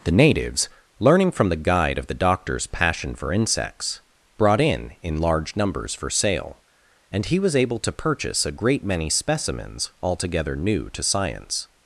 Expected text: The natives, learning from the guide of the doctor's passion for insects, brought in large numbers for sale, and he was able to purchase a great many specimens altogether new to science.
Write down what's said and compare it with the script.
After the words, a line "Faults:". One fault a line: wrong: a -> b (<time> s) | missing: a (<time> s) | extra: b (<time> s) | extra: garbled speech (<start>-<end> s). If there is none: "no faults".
The natives, learning from the guide of the doctor's passion for insects, brought in in large numbers for sale, and he was able to purchase a great many specimens altogether new to science.
Faults:
extra: in (5.0 s)